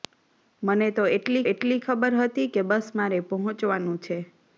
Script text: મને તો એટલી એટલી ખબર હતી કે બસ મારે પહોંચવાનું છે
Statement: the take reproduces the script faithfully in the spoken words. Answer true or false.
true